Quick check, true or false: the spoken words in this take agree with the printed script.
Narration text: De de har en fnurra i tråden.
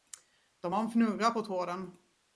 false